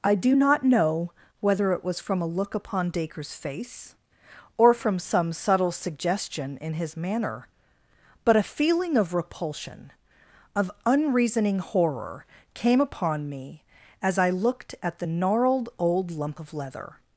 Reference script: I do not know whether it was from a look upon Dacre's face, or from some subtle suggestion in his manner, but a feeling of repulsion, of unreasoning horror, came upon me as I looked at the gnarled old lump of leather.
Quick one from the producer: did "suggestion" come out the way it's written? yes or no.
yes